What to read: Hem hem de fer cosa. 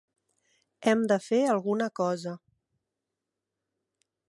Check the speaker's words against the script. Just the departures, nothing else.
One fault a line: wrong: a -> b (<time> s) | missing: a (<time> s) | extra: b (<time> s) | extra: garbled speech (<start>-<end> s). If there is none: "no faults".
missing: hem (1.0 s)
extra: alguna (1.6 s)